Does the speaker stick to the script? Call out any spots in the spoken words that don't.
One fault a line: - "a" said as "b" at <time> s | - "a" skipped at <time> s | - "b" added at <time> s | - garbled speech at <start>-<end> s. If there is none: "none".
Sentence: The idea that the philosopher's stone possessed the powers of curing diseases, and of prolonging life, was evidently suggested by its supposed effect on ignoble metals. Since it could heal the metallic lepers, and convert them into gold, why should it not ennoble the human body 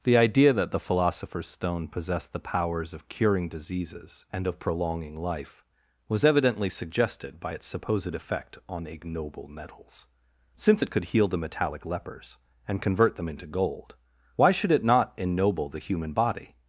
none